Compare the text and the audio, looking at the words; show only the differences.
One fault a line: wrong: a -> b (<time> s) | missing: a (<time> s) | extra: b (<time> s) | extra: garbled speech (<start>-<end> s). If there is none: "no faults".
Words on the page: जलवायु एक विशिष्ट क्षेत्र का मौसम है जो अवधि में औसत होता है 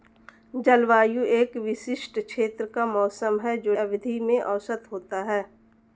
no faults